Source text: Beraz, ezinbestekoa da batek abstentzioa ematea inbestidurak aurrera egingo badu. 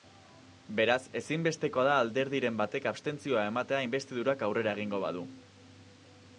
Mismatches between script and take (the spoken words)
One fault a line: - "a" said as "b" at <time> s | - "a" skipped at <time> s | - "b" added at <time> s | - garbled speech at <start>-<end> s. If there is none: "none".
- "alderdiren" added at 2.0 s